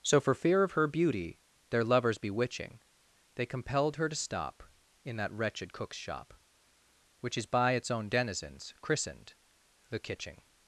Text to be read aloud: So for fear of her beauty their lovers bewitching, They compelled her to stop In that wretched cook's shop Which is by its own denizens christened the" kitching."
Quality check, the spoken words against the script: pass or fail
pass